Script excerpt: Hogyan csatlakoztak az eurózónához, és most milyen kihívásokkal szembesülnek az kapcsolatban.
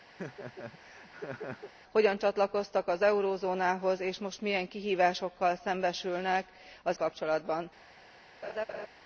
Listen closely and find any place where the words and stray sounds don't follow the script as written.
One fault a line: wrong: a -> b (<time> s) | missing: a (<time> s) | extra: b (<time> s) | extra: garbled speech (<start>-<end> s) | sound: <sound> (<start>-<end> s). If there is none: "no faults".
sound: laugh (0.2-1.7 s)
sound: laugh (8.4-8.9 s)